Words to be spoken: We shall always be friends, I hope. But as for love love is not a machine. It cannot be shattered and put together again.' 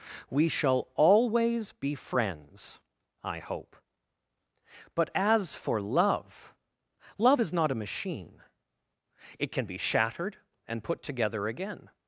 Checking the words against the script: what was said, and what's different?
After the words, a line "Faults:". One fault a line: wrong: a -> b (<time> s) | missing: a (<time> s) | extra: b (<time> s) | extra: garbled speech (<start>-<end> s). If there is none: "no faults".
We shall always be friends, I hope. But as for love love is not a machine. It can be shattered and put together again.'
Faults:
wrong: cannot -> can (9.5 s)